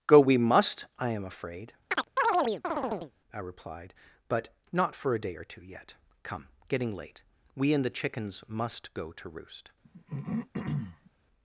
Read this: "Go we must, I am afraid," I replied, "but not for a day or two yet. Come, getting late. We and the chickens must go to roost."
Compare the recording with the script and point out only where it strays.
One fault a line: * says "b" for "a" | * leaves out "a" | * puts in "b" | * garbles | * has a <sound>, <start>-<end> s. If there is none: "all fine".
* has a chirp, 1.9-3.1 s
* has a throat clearing, 9.8-11.1 s